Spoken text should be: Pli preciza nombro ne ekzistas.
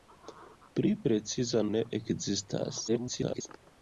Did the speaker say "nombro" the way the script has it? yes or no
no